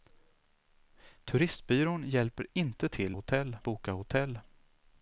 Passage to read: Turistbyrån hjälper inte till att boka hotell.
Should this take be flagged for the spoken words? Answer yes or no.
yes